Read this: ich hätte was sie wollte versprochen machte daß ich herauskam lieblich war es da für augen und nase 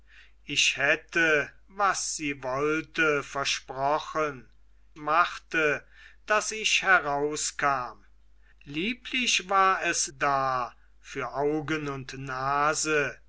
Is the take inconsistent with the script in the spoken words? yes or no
no